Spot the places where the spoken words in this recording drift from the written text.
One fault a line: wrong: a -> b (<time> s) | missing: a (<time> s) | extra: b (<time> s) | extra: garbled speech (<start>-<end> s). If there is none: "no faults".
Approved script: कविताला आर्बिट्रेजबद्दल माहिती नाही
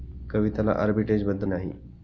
missing: माहिती (1.5 s)